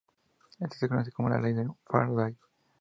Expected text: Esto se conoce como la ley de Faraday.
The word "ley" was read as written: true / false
true